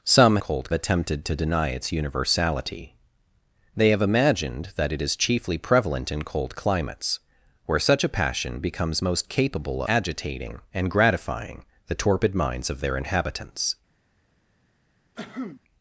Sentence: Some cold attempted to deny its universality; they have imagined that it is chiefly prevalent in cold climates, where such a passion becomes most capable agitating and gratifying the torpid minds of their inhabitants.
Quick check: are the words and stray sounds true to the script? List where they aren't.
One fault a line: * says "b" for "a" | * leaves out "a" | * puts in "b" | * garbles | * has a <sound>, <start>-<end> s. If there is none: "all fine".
* has a cough, 15.2-15.6 s